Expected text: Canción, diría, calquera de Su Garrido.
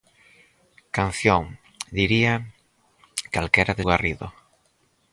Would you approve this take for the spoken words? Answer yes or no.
no